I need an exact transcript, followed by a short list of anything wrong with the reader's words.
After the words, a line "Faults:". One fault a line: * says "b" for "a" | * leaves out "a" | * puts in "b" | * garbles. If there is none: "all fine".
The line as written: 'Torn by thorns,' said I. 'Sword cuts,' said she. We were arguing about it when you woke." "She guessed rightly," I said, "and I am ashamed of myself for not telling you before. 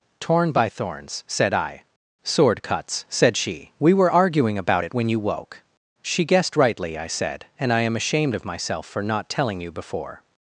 'Torn by thorns,' said I. 'Sword cuts,' said she. We were arguing about it when you woke." "She guessed rightly," I said, "and I am ashamed of myself for not telling you before.
Faults:
all fine